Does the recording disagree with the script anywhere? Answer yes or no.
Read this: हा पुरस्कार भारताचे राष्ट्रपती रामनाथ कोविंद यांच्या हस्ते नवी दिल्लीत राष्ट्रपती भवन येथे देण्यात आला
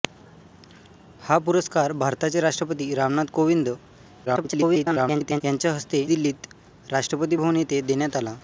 yes